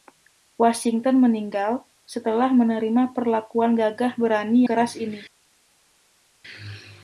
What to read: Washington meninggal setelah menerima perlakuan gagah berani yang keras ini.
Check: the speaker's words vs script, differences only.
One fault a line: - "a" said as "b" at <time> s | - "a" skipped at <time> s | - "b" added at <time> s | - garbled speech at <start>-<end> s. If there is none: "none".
- "yang" skipped at 4.7 s